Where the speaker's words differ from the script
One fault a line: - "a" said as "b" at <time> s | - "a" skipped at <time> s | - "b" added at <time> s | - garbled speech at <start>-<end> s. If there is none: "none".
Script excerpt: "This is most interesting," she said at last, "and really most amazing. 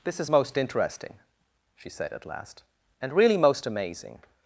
none